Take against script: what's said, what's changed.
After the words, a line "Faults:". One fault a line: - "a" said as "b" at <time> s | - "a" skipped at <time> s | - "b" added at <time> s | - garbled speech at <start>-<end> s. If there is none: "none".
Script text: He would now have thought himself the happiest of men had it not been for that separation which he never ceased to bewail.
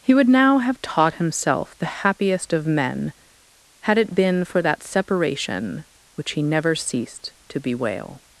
He would now have taught himself the happiest of men had it been for that separation which he never ceased to bewail.
Faults:
- "thought" said as "taught" at 0.8 s
- "not" skipped at 4.2 s